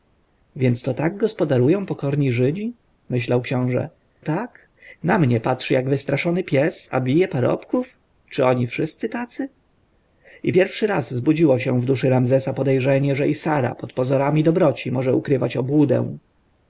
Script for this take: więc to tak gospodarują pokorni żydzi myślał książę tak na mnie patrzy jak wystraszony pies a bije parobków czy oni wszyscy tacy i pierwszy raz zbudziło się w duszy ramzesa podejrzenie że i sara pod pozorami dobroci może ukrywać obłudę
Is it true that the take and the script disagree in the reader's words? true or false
false